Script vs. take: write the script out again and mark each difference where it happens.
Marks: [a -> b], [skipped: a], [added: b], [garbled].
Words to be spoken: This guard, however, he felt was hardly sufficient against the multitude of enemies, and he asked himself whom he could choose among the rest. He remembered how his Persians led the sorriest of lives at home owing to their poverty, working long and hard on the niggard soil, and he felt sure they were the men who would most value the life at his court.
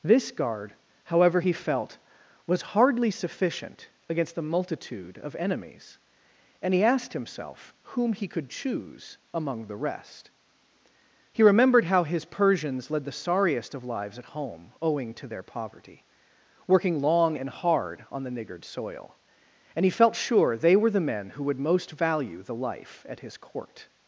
This guard, however, he felt was hardly sufficient against the multitude of enemies, and he asked himself whom he could choose among the rest. He remembered how his Persians led the sorriest of lives at home owing to their poverty, working long and hard on the niggard soil, and he felt sure they were the men who would most value the life at his court.